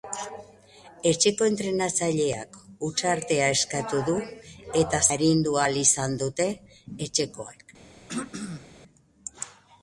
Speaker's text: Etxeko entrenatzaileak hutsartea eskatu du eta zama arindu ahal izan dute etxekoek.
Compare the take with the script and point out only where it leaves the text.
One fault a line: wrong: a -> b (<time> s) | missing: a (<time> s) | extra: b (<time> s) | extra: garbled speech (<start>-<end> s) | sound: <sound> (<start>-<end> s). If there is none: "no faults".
missing: zama (5.0 s)
sound: throat clearing (8.1-8.7 s)